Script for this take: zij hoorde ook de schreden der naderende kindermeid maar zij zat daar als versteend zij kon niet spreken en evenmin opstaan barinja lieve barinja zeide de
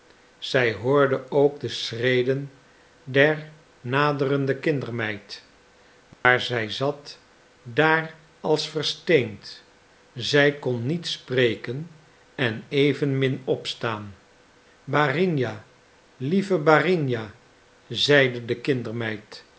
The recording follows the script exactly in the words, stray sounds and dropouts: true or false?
false